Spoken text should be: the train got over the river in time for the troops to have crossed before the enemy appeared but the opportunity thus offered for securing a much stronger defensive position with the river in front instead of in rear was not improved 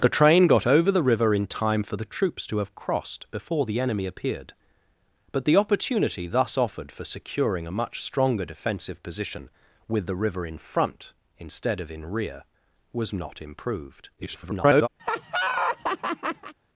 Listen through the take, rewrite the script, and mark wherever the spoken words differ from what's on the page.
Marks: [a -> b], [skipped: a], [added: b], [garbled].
the train got over the river in time for the troops to have crossed before the enemy appeared but the opportunity thus offered for securing a much stronger defensive position with the river in front instead of in rear was not improved [garbled]